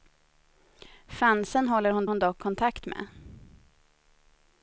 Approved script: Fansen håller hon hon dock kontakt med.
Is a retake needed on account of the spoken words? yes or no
no